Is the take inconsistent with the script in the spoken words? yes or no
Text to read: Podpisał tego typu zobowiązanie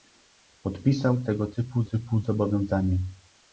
yes